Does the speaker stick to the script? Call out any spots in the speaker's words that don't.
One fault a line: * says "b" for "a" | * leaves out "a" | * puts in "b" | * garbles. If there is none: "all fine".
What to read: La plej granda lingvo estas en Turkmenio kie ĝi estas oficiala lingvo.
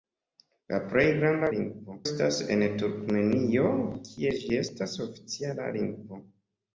all fine